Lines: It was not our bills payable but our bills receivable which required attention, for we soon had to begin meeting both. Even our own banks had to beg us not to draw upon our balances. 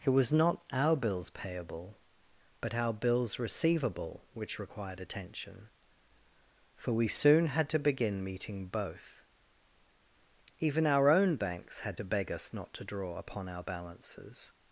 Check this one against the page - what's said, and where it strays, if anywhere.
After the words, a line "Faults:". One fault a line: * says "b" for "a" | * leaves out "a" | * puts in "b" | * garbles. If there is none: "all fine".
It was not our bills payable but our bills receivable which required attention, for we soon had to begin meeting both. Even our own banks had to beg us not to draw upon our balances.
Faults:
all fine